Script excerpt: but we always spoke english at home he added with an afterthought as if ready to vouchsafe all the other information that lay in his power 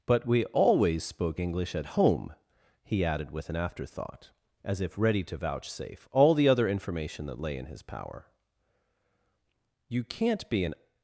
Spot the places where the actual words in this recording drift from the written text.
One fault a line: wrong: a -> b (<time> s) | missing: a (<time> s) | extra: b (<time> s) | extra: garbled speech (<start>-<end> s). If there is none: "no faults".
extra: you can't be an (9.9 s)